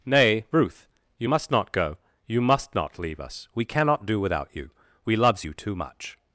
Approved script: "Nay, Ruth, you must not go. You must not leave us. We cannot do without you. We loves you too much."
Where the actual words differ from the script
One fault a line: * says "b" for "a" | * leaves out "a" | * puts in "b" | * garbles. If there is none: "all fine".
all fine